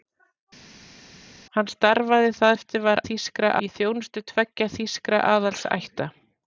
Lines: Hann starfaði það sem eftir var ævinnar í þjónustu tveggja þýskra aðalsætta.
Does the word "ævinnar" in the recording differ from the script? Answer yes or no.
yes